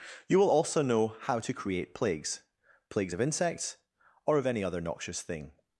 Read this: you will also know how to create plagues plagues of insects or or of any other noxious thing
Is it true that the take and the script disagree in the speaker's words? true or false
true